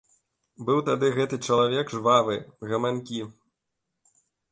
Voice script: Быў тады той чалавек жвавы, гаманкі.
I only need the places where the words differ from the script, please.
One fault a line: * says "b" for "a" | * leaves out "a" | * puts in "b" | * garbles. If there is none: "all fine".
* says "гэты" for "той"